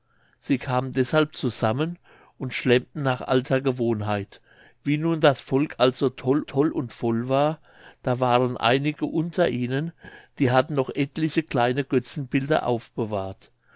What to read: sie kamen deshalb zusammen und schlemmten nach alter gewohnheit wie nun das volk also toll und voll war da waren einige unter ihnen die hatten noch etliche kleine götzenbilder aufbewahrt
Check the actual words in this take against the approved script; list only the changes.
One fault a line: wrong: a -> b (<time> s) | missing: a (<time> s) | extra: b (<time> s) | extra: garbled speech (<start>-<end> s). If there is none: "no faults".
extra: toll (6.4 s)